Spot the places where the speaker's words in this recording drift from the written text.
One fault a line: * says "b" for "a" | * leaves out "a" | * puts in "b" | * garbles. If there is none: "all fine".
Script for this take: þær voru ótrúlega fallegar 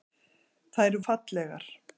* leaves out "voru ótrúlega"